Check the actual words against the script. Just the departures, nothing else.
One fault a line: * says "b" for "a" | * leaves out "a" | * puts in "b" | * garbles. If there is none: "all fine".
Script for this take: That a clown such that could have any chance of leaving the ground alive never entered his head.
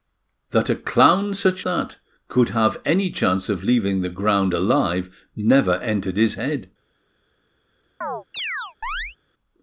all fine